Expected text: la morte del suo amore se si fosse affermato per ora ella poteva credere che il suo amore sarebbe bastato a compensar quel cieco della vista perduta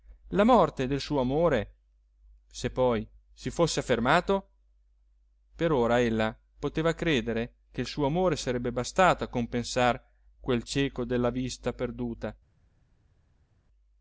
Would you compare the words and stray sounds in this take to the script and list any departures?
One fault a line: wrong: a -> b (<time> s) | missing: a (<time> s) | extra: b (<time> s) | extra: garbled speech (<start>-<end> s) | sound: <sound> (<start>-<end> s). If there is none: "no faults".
extra: poi (2.7 s)